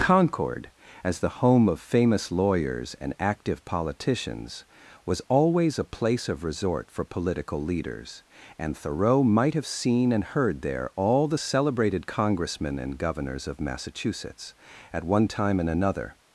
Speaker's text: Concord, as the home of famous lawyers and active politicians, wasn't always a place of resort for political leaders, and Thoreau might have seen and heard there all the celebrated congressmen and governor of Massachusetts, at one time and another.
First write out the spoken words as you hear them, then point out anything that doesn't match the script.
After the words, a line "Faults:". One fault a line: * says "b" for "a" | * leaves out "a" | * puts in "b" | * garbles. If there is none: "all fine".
Concord, as the home of famous lawyers and active politicians, was always a place of resort for political leaders, and Thoreau might have seen and heard there all the celebrated congressmen and governors of Massachusetts, at one time and another.
Faults:
* says "was" for "wasn't"
* says "governors" for "governor"